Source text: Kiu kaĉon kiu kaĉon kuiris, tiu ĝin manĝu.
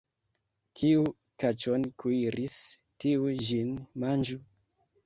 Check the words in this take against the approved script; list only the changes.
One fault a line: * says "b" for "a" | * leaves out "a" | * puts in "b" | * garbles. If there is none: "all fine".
* leaves out "kiu kaĉon"